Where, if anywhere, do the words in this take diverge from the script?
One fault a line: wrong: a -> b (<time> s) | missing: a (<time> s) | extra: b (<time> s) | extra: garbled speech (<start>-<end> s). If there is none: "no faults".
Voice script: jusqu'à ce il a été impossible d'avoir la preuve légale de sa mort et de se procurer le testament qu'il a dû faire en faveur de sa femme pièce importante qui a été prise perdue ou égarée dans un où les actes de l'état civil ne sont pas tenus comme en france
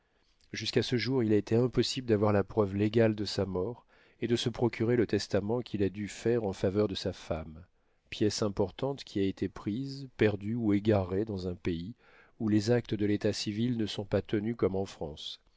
extra: jour (1.0 s)
extra: pays (11.6 s)